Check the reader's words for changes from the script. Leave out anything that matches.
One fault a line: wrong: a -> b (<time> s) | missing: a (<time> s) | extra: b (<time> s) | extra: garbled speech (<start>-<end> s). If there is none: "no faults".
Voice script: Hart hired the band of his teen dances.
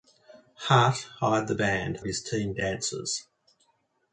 no faults